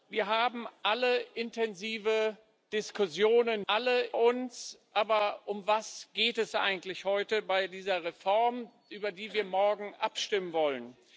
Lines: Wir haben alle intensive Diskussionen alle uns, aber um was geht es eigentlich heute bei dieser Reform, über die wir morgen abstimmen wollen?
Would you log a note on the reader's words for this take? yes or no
no